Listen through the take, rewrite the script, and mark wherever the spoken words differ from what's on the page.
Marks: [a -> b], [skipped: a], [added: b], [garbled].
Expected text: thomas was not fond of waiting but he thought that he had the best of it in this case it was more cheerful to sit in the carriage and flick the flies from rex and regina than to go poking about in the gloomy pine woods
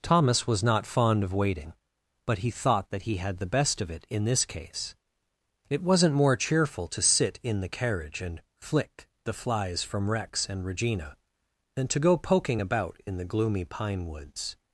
thomas was not fond of waiting but he thought that he had the best of it in this case it [was -> wasn't] more cheerful to sit in the carriage and flick the flies from rex and regina than to go poking about in the gloomy pine woods